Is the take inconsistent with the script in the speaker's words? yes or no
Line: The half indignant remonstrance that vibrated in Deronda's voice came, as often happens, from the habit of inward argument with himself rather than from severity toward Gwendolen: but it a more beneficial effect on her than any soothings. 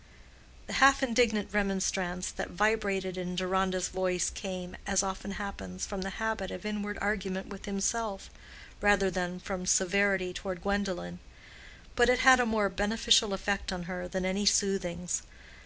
yes